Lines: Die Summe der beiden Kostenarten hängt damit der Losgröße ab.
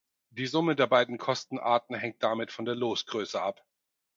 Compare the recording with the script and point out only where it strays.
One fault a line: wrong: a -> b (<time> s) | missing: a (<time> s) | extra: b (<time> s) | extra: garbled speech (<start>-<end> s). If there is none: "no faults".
extra: von (2.5 s)